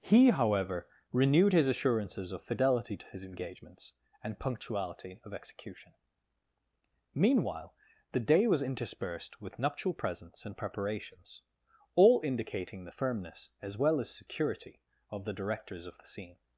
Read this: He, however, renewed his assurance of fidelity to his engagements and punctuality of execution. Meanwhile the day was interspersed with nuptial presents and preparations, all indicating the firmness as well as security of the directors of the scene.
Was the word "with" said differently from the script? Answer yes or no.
no